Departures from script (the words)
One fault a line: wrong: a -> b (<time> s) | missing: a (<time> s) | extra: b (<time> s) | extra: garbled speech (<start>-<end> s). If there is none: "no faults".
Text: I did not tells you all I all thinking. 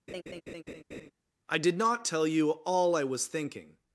wrong: tells -> tell (2.0 s)
wrong: all -> was (3.0 s)